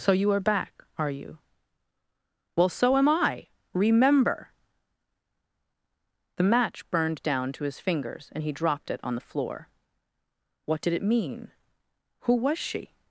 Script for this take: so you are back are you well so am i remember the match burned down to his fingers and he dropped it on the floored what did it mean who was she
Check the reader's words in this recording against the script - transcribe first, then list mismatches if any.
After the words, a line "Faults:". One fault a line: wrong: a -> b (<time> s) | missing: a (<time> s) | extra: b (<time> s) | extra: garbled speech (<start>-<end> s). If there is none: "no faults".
so you are back are you well so am i remember the match burned down to his fingers and he dropped it on the floor what did it mean who was she
Faults:
wrong: floored -> floor (9.2 s)